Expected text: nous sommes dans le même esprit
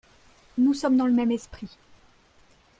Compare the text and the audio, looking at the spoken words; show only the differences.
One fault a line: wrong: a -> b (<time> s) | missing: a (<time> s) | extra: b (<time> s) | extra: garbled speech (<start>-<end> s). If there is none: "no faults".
no faults